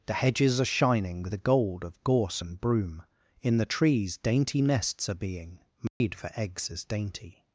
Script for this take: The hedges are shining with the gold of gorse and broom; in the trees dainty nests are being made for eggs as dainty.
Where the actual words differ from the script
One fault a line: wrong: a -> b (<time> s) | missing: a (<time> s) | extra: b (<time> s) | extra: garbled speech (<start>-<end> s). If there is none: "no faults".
no faults